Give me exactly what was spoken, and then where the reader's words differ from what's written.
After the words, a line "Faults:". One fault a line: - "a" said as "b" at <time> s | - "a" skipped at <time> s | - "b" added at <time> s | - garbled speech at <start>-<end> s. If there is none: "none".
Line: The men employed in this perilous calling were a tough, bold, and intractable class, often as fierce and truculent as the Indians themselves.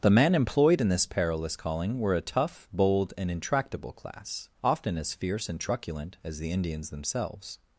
The men employed in this perilous calling were a tough, bold, and intractable class, often as fierce and truculent as the Indians themselves.
Faults:
none